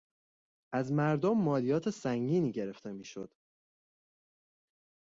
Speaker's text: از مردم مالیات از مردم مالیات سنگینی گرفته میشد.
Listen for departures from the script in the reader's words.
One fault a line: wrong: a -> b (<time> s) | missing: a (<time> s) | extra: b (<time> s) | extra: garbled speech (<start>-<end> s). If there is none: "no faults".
missing: از مردم مالیات (1.9 s)